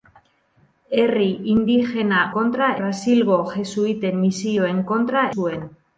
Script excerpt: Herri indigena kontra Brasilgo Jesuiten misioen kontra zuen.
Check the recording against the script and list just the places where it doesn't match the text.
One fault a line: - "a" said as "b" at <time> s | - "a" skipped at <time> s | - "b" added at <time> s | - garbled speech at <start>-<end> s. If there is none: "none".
none